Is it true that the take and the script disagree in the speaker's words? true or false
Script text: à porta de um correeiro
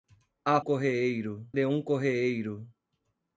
true